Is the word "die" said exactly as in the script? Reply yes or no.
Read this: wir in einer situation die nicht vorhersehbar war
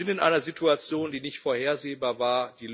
yes